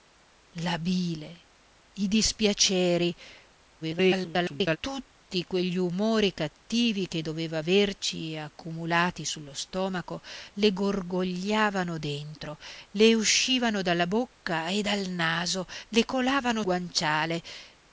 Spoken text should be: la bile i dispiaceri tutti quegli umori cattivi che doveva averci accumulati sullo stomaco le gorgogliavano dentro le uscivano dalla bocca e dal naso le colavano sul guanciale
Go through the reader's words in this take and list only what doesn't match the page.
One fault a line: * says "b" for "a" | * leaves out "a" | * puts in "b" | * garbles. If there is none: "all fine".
* garbles
* leaves out "sul"